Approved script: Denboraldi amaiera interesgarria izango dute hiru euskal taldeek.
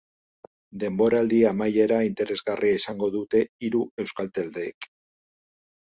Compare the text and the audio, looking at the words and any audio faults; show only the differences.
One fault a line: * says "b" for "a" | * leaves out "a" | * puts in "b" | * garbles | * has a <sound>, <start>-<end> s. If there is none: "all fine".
all fine